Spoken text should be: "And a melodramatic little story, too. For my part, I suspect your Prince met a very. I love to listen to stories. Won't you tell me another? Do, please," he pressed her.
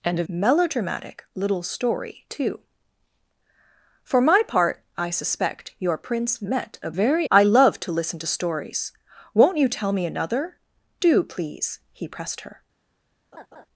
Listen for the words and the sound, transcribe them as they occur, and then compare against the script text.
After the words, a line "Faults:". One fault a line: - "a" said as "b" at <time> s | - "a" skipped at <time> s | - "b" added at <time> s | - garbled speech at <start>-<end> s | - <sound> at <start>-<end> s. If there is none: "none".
"And a melodramatic little story, too. For my part, I suspect your Prince met a very. I love to listen to stories. Won't you tell me another? Do, please," he pressed her.
Faults:
- laugh at 13.3-13.7 s